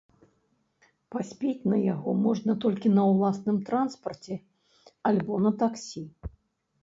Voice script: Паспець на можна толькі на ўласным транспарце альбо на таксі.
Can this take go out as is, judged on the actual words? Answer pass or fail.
fail